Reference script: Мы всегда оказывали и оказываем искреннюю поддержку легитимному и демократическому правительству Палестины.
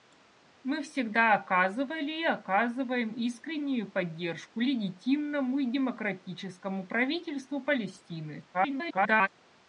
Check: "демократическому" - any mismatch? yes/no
no